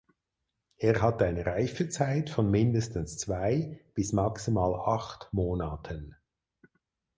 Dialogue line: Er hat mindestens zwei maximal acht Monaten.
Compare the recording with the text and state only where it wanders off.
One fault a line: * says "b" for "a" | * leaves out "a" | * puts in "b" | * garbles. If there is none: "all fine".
* puts in "eine Reifezeit von"
* puts in "bis"